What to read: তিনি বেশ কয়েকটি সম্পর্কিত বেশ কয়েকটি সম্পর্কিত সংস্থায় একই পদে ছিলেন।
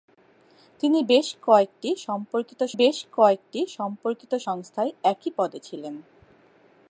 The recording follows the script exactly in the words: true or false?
true